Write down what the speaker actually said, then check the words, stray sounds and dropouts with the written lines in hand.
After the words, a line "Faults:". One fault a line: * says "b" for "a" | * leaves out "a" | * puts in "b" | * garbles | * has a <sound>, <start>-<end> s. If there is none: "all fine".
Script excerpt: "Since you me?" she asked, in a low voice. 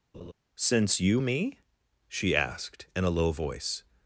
"Since you me?" she asked, in a low voice.
Faults:
* has a laugh, 0.1-0.3 s